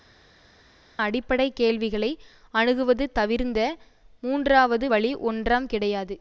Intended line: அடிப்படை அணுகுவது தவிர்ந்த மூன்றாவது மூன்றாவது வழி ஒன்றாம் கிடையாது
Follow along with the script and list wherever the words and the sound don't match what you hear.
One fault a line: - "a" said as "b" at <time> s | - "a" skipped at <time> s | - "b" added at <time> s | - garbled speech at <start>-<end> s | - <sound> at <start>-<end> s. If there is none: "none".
- "கேள்விகளை" added at 1.5 s
- "மூன்றாவது" skipped at 4.9 s